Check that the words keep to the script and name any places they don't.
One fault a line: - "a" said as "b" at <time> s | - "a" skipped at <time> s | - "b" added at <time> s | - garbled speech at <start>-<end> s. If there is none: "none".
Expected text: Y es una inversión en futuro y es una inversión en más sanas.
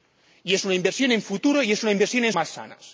none